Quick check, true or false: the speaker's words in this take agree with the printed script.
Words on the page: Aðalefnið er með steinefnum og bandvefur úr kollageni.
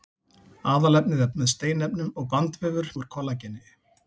true